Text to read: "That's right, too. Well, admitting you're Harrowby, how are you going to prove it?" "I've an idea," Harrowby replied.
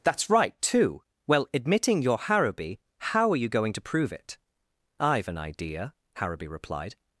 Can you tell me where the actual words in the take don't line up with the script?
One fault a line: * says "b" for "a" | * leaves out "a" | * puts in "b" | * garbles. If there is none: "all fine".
all fine